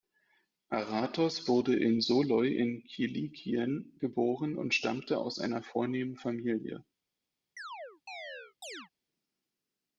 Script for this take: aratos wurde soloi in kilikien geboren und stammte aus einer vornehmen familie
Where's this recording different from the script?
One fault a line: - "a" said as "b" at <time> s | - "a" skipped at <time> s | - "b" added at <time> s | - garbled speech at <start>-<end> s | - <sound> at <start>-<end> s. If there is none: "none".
- "in" added at 1.8 s
- chirp at 7.6-8.9 s